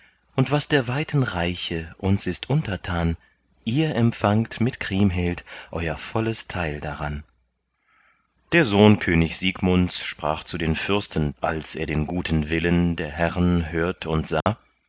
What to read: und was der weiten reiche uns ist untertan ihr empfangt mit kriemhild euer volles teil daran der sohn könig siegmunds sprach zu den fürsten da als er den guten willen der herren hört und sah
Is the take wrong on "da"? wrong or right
wrong